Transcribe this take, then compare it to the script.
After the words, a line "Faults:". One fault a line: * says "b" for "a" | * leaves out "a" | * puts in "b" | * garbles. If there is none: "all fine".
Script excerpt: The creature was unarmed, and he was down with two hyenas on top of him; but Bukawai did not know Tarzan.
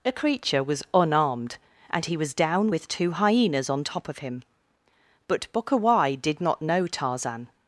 A creature was unarmed, and he was down with two hyenas on top of him; but Bukawai did not know Tarzan.
Faults:
* says "A" for "The"